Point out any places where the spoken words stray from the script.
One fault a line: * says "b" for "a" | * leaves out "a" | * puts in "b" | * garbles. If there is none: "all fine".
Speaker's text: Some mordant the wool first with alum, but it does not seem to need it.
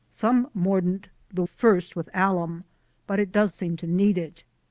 * leaves out "wool"
* leaves out "not"